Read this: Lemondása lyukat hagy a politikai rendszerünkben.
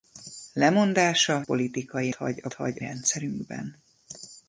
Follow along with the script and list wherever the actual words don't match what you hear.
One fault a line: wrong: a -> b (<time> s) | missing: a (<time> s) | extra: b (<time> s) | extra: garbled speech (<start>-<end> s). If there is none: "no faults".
wrong: lyukat -> politikai (1.4 s)
wrong: politikai -> hagy (2.5 s)